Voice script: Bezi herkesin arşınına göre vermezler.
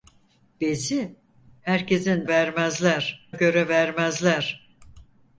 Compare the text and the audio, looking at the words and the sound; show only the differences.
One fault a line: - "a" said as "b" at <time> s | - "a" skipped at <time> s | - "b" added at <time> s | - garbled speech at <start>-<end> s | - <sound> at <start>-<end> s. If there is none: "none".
- "arşınına" said as "vermezler" at 2.3 s